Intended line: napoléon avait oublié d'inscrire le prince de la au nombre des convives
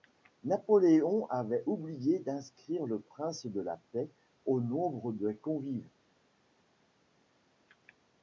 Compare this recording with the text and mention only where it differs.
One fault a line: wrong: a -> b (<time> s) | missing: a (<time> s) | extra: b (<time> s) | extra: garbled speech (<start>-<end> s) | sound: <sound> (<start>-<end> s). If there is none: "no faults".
extra: paix (3.9 s)